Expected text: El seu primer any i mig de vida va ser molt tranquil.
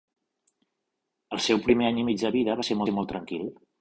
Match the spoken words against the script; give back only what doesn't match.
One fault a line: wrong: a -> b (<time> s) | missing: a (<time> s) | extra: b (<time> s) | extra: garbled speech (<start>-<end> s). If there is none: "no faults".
extra: ser (2.9 s)